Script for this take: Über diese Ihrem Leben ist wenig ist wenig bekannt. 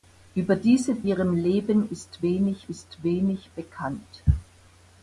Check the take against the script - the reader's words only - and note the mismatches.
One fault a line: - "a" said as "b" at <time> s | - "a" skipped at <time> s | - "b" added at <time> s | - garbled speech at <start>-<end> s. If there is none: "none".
none